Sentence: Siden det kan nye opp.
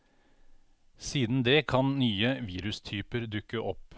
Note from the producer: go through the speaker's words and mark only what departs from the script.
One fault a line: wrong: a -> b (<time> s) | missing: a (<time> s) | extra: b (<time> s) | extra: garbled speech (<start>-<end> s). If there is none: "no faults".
extra: virustyper dukke (2.5 s)